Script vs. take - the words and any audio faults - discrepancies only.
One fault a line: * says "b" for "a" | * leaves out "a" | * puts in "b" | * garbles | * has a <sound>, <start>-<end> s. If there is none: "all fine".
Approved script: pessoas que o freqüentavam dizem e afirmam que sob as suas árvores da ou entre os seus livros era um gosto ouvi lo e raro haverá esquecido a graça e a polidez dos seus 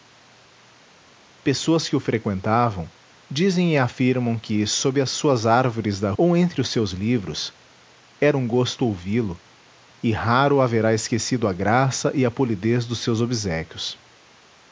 all fine